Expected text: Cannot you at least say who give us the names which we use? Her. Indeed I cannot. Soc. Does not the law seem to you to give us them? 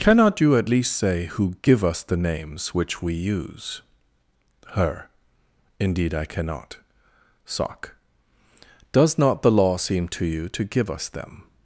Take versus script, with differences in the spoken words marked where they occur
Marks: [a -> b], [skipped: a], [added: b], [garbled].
Cannot you at least say who give us the names which we use? Her. Indeed I cannot. Soc. Does not the law seem to you to give us them?